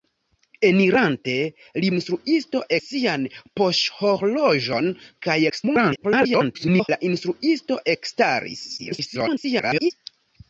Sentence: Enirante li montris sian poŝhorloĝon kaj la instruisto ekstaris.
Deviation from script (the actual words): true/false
true